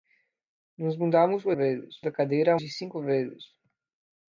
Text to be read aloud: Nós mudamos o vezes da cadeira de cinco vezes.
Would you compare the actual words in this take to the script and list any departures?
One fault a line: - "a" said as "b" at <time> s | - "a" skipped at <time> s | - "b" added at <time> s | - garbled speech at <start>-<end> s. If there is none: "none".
none